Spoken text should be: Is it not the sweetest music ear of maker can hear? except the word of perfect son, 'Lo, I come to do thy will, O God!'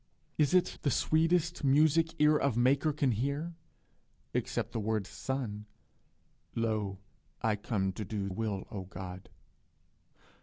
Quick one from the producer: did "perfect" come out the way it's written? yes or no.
no